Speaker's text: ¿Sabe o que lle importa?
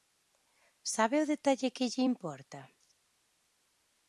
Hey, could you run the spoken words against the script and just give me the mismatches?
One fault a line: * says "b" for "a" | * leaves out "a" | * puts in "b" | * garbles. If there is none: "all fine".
* puts in "detalle"